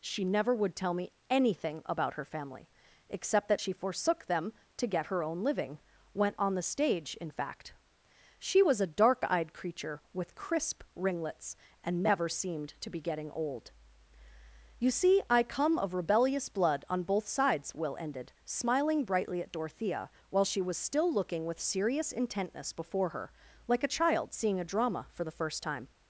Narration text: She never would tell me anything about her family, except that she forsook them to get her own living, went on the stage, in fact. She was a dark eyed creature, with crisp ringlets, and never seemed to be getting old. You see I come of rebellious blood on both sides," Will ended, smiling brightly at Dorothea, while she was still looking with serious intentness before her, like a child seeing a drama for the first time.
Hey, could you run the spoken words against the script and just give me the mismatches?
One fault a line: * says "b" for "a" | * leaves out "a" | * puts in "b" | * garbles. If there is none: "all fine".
all fine